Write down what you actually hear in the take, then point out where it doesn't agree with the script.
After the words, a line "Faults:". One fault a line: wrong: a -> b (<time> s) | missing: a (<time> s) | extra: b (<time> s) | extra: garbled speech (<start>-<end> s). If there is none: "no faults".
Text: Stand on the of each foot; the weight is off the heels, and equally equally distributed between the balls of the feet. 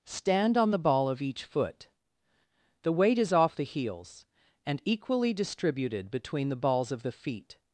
Stand on the ball of each foot; the weight is off the heels, and equally distributed between the balls of the feet.
Faults:
extra: ball (0.8 s)
missing: equally (5.3 s)